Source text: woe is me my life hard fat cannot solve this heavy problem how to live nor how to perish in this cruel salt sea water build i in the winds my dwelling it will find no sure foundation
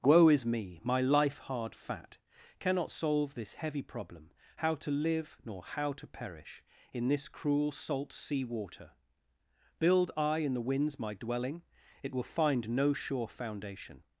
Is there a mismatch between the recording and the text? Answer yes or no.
no